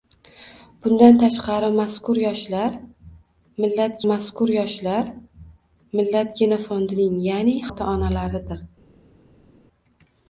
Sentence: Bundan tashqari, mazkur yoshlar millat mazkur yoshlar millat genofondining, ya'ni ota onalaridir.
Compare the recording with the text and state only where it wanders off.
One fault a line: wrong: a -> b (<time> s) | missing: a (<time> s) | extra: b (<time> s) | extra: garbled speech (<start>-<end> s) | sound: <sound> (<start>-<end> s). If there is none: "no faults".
no faults